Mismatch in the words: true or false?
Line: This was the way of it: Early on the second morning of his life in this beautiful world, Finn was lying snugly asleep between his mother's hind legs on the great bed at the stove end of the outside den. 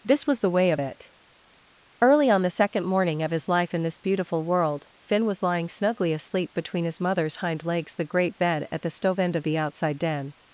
true